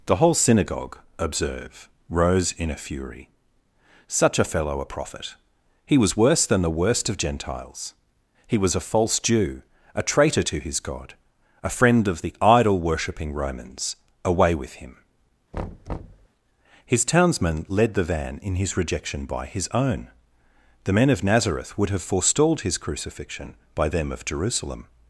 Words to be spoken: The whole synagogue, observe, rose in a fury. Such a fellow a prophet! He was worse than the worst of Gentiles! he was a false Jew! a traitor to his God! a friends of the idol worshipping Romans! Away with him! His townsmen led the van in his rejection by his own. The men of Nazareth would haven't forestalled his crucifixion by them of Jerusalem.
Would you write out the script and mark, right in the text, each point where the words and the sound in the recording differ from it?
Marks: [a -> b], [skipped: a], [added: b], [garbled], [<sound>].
The whole synagogue, observe, rose in a fury. Such a fellow a prophet! He was worse than the worst of Gentiles! he was a false Jew! a traitor to his God! a [friends -> friend] of the idol worshipping Romans! Away with him! [thud] His townsmen led the van in his rejection by his own. The men of Nazareth would [haven't -> have] forestalled his crucifixion by them of Jerusalem.